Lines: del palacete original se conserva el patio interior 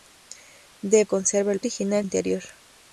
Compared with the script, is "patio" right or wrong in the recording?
wrong